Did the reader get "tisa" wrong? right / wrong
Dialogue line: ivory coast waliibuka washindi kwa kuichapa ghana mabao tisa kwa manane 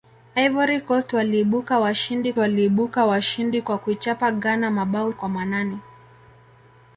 wrong